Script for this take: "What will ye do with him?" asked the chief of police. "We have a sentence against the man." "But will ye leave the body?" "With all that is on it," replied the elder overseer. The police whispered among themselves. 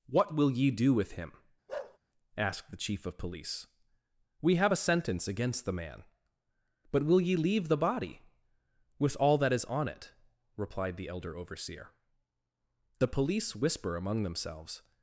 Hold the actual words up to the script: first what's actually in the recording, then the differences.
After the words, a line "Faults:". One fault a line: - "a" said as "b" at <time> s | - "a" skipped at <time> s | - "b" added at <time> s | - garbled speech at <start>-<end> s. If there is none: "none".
"What will ye do with him?" asked the chief of police. "We have a sentence against the man." "But will ye leave the body?" "With all that is on it," replied the elder overseer. The police whisper among themselves.
Faults:
- "whispered" said as "whisper" at 13.5 s